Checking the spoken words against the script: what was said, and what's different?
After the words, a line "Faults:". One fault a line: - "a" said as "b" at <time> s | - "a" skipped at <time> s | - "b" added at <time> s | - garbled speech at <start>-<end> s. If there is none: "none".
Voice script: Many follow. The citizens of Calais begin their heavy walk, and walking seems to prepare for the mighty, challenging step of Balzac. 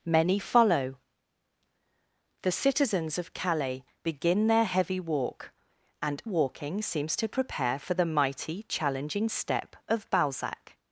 Many follow. The citizens of Calais begin their heavy walk, and walking seems to prepare for the mighty, challenging step of Balzac.
Faults:
none